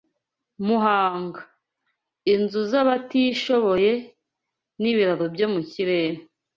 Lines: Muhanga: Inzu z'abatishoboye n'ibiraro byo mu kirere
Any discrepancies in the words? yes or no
no